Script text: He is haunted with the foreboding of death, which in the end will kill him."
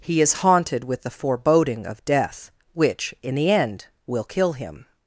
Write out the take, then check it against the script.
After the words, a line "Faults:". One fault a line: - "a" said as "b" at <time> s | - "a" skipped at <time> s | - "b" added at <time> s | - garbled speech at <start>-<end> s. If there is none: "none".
He is haunted with the foreboding of death, which in the end will kill him."
Faults:
none